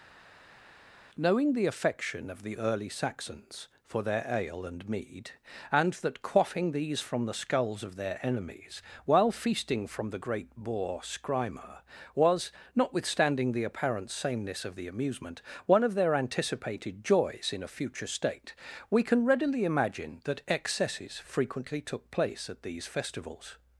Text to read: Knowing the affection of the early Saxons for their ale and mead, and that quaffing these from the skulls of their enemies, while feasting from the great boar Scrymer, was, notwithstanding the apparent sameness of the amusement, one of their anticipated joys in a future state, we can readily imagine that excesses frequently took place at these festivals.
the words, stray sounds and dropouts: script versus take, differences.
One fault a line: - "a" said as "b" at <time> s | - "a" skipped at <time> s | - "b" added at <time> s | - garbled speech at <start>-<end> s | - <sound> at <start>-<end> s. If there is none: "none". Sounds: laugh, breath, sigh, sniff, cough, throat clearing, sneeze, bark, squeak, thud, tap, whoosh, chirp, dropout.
none